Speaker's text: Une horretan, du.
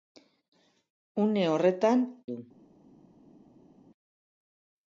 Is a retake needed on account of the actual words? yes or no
no